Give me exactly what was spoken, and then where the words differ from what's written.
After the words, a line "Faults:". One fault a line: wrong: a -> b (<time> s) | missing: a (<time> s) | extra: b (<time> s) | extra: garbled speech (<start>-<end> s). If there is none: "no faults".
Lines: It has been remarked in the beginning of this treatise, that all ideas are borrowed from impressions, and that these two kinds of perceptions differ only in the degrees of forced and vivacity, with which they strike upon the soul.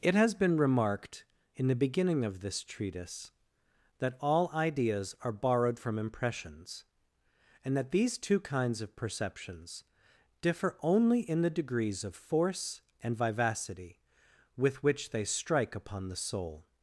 It has been remarked in the beginning of this treatise, that all ideas are borrowed from impressions, and that these two kinds of perceptions differ only in the degrees of force and vivacity, with which they strike upon the soul.
Faults:
wrong: forced -> force (12.1 s)